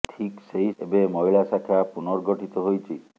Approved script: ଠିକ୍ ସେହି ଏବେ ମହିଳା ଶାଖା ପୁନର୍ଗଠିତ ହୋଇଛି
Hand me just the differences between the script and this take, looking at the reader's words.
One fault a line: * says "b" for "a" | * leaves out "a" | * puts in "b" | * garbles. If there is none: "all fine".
all fine